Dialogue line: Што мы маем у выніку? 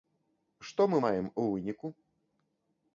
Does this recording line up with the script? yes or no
yes